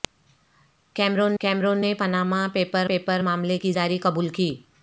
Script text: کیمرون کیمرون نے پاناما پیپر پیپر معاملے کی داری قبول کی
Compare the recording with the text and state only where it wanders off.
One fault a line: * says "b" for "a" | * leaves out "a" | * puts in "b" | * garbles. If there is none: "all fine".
all fine